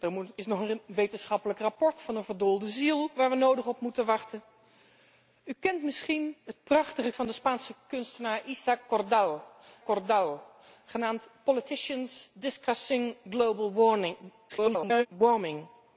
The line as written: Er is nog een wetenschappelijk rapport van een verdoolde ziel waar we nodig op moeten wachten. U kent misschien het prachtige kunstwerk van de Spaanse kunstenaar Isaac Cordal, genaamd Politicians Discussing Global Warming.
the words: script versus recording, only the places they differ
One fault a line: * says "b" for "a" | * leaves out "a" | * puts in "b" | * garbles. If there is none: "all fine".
* leaves out "kunstwerk"
* puts in "Cordal"
* garbles